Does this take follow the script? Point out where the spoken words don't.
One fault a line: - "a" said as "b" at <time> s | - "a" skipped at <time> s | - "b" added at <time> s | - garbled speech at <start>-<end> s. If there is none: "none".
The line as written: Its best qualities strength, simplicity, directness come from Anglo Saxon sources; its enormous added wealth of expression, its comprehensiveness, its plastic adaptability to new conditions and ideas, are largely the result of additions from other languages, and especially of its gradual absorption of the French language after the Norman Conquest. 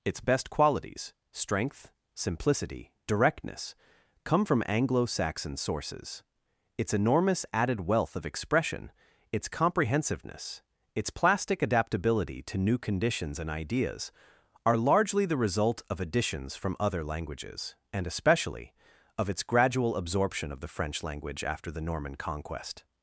none